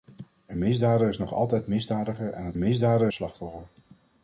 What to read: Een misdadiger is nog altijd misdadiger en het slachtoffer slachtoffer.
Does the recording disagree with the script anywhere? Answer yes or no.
yes